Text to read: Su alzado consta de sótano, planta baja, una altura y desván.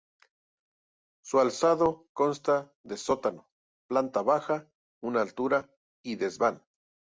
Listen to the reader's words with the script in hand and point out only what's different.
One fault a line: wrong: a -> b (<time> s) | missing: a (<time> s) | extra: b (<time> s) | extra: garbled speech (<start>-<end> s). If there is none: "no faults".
no faults